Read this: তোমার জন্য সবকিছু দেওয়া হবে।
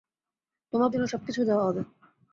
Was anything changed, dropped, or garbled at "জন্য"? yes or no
no